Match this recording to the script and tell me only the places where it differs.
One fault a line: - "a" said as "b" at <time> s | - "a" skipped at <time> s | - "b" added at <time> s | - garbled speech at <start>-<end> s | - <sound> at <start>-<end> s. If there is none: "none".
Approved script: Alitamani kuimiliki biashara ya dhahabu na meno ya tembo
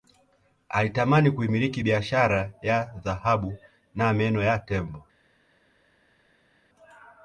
none